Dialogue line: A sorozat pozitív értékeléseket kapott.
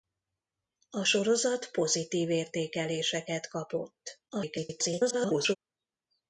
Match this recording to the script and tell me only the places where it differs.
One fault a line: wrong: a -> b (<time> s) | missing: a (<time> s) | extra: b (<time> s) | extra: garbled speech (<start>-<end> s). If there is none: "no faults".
extra: garbled speech (4.3-5.6 s)